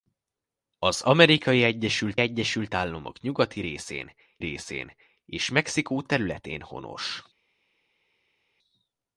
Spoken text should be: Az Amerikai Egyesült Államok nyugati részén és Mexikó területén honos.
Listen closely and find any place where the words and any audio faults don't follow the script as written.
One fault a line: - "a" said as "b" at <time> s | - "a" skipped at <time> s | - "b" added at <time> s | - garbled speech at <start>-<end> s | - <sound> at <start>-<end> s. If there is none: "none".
- "Egyesült" added at 2.2 s
- "részén" added at 4.4 s